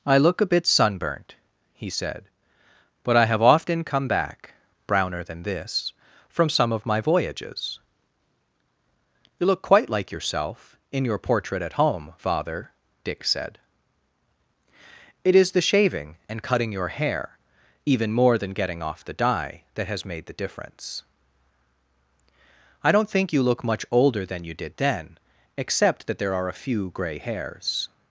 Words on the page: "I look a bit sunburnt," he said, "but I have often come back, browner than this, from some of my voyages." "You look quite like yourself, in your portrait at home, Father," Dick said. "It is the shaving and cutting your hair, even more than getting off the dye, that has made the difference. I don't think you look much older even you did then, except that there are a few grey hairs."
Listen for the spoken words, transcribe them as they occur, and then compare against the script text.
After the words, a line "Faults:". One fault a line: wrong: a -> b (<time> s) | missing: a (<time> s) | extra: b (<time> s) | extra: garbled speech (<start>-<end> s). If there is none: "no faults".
"I look a bit sunburnt," he said, "but I have often come back, browner than this, from some of my voyages." "You look quite like yourself, in your portrait at home, Father," Dick said. "It is the shaving and cutting your hair, even more than getting off the dye, that has made the difference. I don't think you look much older than you did then, except that there are a few grey hairs."
Faults:
wrong: even -> than (24.2 s)